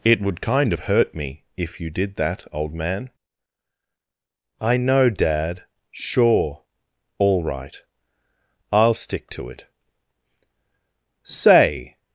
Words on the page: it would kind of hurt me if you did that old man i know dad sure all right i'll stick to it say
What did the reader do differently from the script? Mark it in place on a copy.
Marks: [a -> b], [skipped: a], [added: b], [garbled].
it would kind of hurt me if you did that old man i know dad sure all right i'll stick to it say